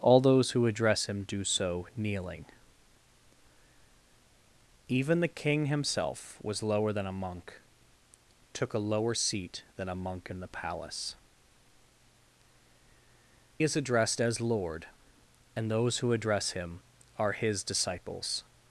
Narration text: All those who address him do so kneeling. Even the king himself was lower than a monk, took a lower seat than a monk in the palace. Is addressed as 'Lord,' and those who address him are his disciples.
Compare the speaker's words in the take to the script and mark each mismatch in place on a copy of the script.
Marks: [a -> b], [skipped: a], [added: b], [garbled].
All those who address him do so kneeling. Even the king himself was lower than a monk, took a lower seat than a monk in the palace. Is addressed as 'Lord,' and those who address him are his disciples.